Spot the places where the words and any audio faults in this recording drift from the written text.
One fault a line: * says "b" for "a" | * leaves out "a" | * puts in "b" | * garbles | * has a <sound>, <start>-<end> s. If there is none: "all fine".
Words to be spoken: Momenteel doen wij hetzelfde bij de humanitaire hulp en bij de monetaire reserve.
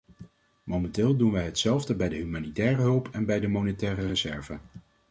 all fine